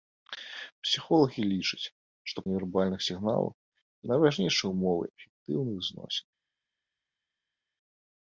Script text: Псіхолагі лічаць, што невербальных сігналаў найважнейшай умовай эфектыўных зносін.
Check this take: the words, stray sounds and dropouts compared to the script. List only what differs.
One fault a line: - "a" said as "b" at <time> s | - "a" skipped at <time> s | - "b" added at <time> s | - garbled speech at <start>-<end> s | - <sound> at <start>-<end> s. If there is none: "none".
none